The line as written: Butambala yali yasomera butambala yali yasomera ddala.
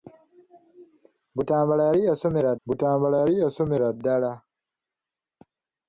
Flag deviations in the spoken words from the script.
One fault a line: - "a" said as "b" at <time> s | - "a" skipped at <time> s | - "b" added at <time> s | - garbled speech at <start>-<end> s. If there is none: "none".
none